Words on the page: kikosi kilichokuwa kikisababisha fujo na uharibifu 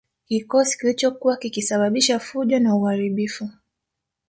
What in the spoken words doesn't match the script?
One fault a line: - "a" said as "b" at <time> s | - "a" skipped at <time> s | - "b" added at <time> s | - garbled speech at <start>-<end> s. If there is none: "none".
none